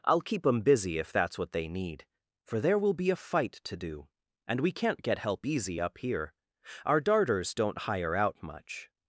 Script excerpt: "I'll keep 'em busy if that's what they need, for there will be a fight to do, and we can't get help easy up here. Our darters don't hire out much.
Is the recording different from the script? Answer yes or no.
no